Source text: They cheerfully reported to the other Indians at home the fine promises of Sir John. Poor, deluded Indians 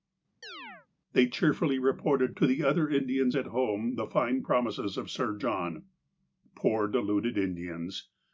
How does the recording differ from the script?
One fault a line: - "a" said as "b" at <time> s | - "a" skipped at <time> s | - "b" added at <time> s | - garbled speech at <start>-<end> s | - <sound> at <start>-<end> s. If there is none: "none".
- chirp at 0.4-0.9 s